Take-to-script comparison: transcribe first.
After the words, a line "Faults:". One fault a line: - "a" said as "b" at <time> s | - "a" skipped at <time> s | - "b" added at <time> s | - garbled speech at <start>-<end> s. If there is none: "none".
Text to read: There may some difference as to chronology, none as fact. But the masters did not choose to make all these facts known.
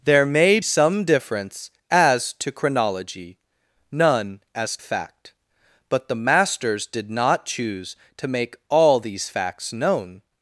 There may some difference as to chronology, none as fact. But the masters did not choose to make all these facts known.
Faults:
none